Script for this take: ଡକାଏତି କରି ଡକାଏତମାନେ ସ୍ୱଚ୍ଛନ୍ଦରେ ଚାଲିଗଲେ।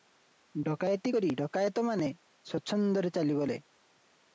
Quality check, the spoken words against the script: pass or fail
pass